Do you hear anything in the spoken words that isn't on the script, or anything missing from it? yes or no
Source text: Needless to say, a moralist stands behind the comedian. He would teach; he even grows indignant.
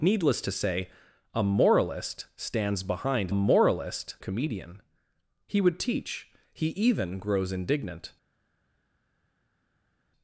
yes